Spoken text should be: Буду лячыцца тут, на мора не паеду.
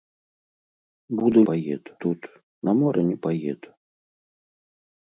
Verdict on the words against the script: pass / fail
fail